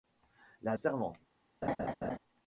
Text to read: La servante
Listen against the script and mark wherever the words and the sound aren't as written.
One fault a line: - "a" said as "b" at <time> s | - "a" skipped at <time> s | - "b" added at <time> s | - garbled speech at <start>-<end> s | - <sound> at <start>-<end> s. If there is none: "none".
- laugh at 1.6-2.2 s